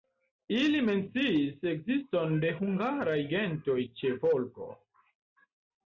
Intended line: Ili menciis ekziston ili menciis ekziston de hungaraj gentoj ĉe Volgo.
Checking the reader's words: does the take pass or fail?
fail